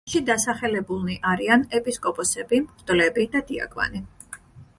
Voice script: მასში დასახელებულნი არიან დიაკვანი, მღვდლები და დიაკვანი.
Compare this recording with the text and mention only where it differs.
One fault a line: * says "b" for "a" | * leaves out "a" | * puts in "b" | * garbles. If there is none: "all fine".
* says "ეპისკოპოსები" for "დიაკვანი"